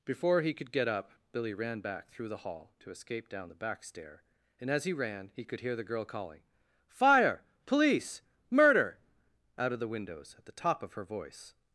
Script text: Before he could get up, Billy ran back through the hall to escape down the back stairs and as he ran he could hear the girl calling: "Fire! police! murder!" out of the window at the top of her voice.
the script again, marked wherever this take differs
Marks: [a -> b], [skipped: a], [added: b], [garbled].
Before he could get up, Billy ran back through the hall to escape down the back [stairs -> stair] and as he ran he could hear the girl calling: "Fire! police! murder!" out of the [window -> windows] at the top of her voice.